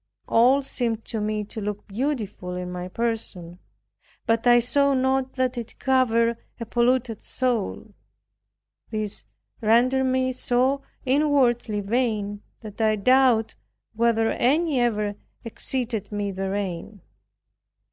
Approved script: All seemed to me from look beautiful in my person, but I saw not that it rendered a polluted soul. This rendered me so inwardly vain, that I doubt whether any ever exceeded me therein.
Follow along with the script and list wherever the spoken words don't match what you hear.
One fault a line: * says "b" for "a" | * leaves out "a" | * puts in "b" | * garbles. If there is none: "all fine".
* says "to" for "from"
* says "covered" for "rendered"